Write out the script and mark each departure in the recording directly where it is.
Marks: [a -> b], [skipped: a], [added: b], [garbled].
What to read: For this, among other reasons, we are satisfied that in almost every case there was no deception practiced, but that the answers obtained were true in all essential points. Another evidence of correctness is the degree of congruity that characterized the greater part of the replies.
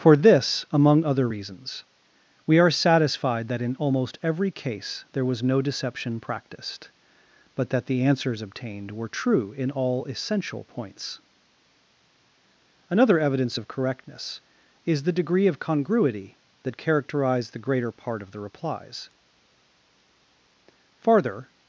For this, among other reasons, we are satisfied that in almost every case there was no deception practiced, but that the answers obtained were true in all essential points. Another evidence of correctness is the degree of congruity that characterized the greater part of the replies. [added: Farther]